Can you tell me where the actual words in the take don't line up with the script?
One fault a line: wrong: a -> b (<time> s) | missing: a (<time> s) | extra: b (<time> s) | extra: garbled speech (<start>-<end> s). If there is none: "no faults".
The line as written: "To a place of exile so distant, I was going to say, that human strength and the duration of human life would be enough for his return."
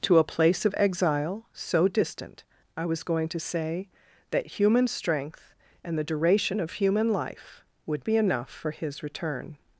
no faults